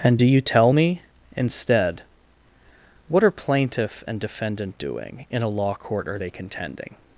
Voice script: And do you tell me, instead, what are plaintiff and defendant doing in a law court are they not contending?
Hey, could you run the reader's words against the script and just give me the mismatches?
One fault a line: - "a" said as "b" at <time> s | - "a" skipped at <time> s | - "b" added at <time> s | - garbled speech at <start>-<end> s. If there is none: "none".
- "not" skipped at 6.3 s